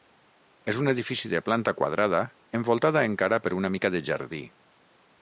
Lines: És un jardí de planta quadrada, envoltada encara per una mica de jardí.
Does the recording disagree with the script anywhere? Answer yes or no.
yes